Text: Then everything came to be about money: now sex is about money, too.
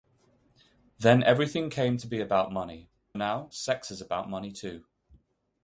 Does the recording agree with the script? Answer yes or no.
yes